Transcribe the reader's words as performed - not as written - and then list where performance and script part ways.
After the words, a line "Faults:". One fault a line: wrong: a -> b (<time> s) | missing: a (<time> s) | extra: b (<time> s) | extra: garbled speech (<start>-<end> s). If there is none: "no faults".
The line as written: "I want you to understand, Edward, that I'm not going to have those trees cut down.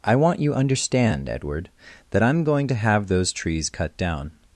"I want you understand, Edward, that I'm going to have those trees cut down.
Faults:
missing: to (0.5 s)
missing: not (2.4 s)